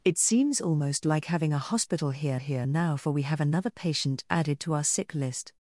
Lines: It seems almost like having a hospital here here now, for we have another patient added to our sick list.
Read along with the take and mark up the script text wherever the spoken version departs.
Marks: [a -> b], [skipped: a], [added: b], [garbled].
It seems almost like having a hospital here here now, for we have another patient added to our sick list.